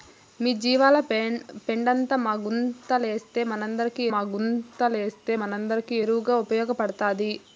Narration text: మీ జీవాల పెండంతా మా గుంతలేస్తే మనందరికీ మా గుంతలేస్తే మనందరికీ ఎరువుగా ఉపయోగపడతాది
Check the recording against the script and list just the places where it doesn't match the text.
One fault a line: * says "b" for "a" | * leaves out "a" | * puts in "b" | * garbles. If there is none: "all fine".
all fine